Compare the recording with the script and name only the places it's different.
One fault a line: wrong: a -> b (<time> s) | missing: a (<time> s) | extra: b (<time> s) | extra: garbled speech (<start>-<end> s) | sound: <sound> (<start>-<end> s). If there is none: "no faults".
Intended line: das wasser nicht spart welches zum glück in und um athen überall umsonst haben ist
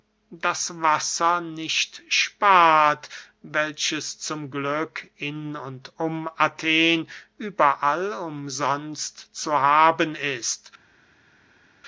extra: zu (9.4 s)